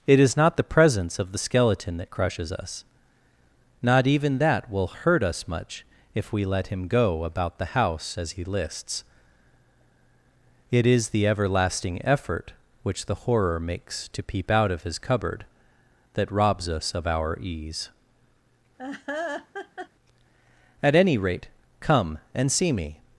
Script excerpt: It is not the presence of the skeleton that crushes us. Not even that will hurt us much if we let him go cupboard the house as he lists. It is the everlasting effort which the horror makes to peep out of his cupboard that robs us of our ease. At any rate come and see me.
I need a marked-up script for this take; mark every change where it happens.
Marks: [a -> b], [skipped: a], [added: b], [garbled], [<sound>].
It is not the presence of the skeleton that crushes us. Not even that will hurt us much if we let him go [cupboard -> about] the house as he lists. It is the everlasting effort which the horror makes to peep out of his cupboard that robs us of our ease. [laugh] At any rate come and see me.